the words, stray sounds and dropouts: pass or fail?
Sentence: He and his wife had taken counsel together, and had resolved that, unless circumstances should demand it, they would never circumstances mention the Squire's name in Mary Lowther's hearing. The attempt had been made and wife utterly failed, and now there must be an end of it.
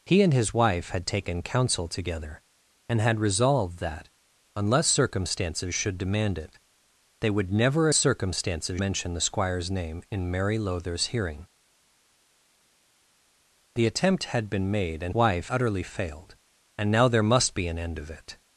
pass